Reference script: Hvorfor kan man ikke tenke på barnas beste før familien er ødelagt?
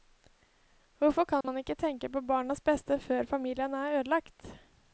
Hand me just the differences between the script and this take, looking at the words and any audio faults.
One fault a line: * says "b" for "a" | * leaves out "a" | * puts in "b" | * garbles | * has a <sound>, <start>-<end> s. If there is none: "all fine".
* has a dropout, 1.4-1.4 s